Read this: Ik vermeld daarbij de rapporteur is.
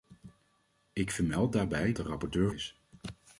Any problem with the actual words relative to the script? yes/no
no